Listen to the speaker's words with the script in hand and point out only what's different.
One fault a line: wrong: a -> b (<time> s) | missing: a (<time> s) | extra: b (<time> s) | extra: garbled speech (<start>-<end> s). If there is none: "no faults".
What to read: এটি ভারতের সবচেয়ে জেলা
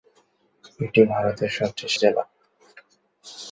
no faults